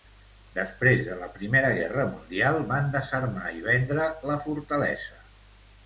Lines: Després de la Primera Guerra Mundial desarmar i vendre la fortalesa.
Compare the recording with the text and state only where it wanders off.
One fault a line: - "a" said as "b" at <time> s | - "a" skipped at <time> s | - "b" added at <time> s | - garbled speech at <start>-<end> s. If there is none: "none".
- "van" added at 2.7 s